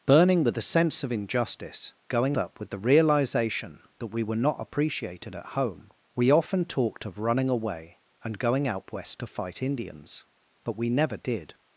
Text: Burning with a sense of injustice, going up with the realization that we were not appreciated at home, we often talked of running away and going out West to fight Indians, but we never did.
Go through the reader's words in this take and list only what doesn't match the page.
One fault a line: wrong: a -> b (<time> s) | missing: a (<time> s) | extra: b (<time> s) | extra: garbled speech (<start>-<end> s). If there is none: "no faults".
no faults